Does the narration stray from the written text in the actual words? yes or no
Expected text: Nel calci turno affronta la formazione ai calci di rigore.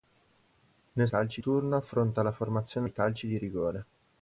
no